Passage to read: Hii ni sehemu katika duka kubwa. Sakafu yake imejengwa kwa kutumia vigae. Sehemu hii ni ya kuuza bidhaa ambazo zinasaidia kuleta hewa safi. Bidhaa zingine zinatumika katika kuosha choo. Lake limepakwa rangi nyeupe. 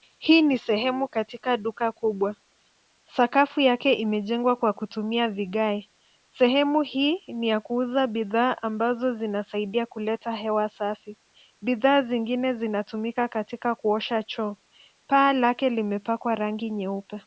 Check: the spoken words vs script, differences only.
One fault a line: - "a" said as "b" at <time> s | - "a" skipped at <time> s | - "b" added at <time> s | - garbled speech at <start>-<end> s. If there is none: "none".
- "Paa" added at 15.1 s